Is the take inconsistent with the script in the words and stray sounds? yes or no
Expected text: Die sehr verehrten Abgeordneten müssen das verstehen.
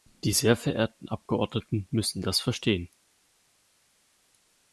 no